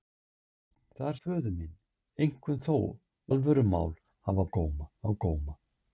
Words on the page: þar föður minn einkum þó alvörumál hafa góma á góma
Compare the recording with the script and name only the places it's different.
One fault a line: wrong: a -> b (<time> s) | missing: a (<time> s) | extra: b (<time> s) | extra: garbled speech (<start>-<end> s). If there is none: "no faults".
no faults